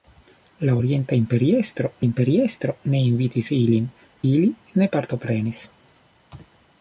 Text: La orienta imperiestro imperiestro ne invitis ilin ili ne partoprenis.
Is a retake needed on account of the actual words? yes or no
no